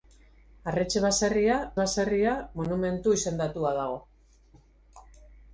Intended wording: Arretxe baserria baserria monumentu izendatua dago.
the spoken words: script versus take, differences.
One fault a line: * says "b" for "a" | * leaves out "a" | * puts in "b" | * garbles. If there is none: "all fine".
all fine